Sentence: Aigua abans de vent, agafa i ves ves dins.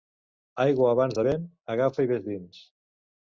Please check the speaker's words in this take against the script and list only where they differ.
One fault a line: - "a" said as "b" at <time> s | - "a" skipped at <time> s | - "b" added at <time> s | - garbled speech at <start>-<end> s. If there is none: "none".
- "ves" skipped at 2.2 s